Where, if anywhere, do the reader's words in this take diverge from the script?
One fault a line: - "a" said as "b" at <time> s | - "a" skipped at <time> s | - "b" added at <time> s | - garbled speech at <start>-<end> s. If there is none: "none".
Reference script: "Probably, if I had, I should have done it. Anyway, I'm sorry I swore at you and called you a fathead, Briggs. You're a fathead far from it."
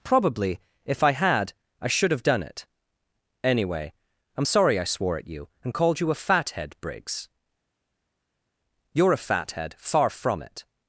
none